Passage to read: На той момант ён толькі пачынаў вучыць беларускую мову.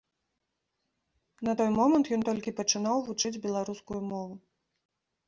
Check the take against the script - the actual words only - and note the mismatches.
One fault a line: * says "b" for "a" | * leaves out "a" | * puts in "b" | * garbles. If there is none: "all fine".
all fine